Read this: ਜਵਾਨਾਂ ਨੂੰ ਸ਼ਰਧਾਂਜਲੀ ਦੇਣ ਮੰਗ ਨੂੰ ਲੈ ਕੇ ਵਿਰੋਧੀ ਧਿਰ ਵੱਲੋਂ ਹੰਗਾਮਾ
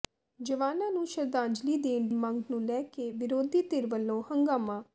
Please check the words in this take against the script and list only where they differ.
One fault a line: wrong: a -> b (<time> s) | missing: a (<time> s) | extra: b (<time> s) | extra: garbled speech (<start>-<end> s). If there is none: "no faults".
no faults